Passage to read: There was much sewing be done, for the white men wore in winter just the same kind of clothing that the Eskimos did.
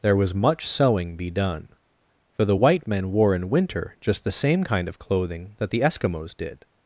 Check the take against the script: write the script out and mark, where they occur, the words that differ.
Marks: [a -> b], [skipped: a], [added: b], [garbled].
There was much sewing be done, for the white men wore in winter just the same kind of clothing that the Eskimos did.